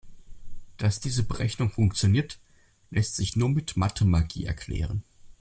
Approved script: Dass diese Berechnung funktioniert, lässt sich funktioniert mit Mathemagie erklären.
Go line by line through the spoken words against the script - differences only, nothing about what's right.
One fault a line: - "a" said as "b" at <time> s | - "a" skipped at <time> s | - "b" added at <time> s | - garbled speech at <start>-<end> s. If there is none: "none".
- "funktioniert" said as "nur" at 3.4 s